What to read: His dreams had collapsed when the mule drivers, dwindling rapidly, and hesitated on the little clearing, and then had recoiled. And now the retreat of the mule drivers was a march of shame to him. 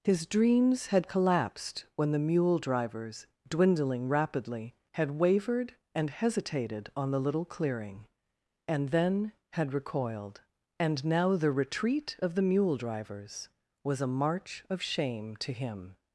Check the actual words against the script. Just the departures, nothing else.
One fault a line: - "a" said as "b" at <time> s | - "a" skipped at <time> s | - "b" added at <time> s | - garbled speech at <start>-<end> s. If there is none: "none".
- "had wavered" added at 5.0 s